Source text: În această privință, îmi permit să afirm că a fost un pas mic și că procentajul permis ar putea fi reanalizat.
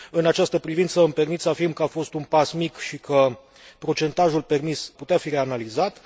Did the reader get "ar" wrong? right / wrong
wrong